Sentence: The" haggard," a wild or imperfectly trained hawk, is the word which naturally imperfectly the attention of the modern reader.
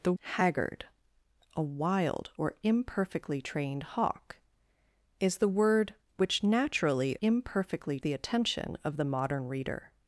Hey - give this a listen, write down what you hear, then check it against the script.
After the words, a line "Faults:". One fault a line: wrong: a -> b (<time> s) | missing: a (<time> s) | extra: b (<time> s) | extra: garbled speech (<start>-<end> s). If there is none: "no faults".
The" haggard," a wild or imperfectly trained hawk, is the word which naturally imperfectly the attention of the modern reader.
Faults:
no faults